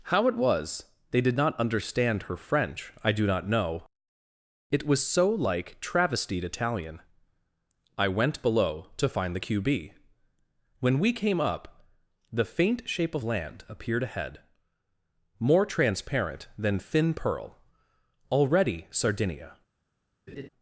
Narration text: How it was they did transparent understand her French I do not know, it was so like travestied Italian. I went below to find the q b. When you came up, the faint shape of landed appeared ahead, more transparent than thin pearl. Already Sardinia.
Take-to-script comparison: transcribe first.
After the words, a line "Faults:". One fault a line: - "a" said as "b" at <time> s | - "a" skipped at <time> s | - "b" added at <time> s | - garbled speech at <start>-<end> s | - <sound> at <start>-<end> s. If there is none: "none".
How it was they did not understand her French I do not know, it was so like travestied Italian. I went below to find the q b. When we came up, the faint shape of land appeared ahead, more transparent than thin pearl. Already Sardinia.
Faults:
- "transparent" said as "not" at 1.4 s
- "you" said as "we" at 11.0 s
- "landed" said as "land" at 13.2 s
- laugh at 20.3-20.5 s